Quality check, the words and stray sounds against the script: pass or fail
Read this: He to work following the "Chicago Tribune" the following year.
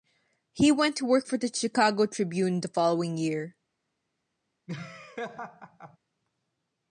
fail